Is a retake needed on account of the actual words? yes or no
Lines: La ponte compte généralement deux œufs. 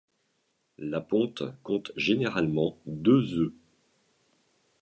no